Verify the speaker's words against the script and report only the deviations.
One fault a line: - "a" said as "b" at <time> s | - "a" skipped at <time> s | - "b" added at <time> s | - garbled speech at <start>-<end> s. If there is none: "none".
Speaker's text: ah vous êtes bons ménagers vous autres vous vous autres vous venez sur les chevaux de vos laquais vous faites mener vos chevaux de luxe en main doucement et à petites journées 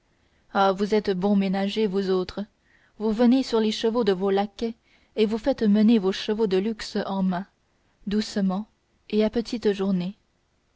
- "vous autres vous" skipped at 3.1 s
- "et" added at 5.2 s